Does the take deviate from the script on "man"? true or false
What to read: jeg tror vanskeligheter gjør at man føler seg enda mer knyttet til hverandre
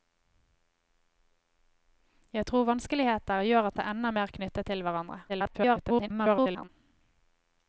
true